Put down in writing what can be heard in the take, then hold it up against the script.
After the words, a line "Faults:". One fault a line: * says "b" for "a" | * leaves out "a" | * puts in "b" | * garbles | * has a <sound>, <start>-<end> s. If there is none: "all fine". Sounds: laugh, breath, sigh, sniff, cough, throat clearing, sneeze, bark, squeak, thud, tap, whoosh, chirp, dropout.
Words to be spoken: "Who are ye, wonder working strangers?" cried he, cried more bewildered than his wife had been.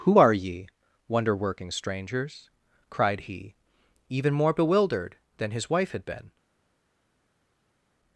"Who are ye, wonder working strangers?" cried he, even more bewildered than his wife had been.
Faults:
* says "even" for "cried"